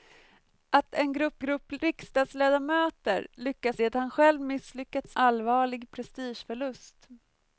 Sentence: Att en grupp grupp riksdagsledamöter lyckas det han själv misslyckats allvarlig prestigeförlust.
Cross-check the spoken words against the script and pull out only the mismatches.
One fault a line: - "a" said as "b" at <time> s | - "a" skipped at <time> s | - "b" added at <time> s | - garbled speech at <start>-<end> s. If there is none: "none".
none